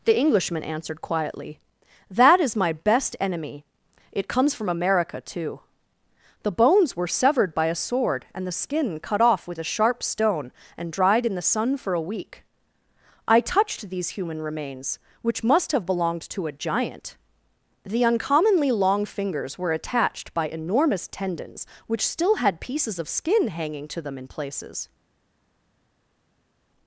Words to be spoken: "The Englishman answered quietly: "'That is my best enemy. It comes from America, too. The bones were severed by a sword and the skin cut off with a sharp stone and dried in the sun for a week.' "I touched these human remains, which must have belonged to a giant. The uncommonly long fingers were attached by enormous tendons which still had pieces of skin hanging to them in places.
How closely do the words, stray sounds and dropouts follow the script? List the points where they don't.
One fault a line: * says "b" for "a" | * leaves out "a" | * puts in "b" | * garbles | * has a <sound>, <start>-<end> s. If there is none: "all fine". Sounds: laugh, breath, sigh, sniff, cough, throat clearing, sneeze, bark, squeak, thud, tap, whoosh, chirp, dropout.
all fine